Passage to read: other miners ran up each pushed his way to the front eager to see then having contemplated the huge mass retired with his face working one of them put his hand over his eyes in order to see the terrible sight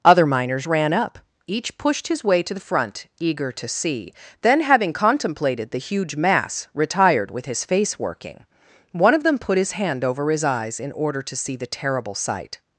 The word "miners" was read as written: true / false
true